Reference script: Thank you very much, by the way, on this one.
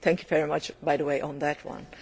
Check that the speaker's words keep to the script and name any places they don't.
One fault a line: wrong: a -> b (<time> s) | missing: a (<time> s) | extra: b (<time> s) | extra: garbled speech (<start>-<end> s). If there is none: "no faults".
wrong: this -> that (1.4 s)